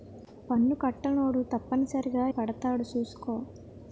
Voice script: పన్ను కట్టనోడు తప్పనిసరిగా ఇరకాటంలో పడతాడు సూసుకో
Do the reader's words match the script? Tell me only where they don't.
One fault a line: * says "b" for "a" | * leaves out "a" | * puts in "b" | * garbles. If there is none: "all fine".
* leaves out "ఇరకాటంలో"